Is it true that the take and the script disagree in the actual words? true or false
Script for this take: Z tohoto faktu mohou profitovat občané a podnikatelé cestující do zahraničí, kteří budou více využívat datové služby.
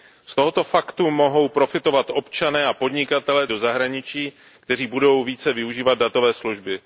true